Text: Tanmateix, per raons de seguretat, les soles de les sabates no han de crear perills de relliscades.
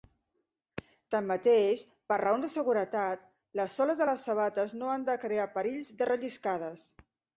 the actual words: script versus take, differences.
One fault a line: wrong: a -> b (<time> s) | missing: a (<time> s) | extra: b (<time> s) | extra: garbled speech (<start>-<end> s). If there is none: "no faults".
no faults